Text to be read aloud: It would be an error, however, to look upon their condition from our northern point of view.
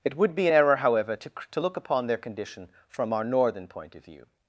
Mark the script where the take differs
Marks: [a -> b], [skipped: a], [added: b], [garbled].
It would be an error, however, to [added: to] look upon their condition from our northern point of view.